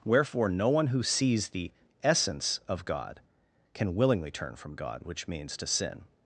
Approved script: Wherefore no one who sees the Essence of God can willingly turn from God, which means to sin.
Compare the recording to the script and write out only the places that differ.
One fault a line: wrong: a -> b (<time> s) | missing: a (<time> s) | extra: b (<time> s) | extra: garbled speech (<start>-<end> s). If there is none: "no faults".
no faults